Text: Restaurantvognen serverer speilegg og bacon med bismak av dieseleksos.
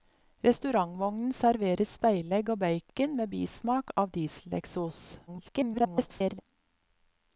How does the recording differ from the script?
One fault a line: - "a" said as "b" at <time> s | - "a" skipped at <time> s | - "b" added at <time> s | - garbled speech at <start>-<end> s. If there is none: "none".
- garbled speech at 5.3-6.4 s